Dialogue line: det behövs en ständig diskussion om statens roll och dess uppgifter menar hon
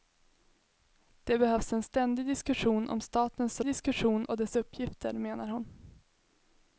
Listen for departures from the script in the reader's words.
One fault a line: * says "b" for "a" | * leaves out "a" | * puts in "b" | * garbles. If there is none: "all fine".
* says "diskussion" for "roll"